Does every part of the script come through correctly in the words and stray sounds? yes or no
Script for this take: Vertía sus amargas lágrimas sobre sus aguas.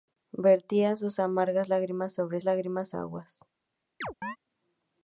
no